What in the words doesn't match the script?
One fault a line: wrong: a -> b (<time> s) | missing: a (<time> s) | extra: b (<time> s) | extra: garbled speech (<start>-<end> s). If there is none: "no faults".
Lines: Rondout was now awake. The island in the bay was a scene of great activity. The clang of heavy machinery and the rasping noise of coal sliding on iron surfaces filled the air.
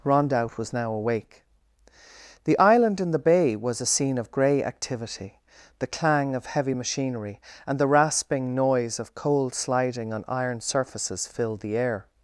wrong: great -> grey (4.3 s)